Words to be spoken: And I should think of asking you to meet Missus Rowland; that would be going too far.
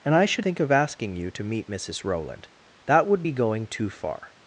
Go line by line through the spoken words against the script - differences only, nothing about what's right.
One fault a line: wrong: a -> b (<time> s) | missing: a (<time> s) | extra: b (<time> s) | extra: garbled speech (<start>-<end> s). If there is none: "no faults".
no faults